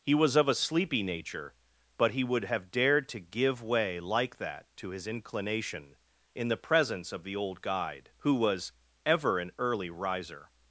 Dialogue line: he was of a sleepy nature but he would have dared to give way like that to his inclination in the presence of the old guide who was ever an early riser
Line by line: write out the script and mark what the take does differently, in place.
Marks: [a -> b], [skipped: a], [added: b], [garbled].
he was of a sleepy nature but he would have dared to give way like that to his inclination in the presence of the old guide who was ever an early riser